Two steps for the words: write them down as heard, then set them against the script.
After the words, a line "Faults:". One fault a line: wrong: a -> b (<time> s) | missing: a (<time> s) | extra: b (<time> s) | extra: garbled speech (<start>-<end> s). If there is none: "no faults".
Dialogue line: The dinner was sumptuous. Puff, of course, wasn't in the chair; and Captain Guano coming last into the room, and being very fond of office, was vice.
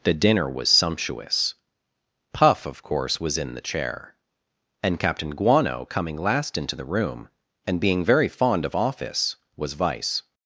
The dinner was sumptuous. Puff, of course, was in the chair; and Captain Guano coming last into the room, and being very fond of office, was vice.
Faults:
wrong: wasn't -> was (3.2 s)